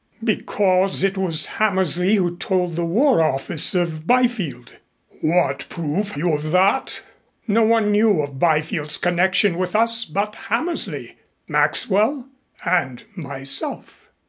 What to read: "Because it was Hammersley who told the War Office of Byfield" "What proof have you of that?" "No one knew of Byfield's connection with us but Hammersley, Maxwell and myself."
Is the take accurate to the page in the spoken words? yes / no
no